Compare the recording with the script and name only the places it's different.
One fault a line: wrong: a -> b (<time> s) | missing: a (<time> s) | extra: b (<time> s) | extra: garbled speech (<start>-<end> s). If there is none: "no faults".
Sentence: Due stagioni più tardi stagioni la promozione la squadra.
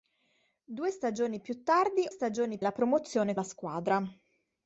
no faults